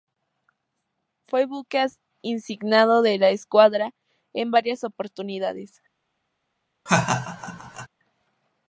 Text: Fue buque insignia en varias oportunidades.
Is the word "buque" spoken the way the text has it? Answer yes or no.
yes